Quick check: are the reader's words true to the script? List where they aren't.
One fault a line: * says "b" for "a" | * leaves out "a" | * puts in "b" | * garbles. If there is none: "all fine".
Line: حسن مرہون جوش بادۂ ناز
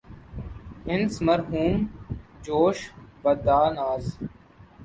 all fine